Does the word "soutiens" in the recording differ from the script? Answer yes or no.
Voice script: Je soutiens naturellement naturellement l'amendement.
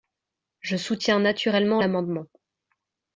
no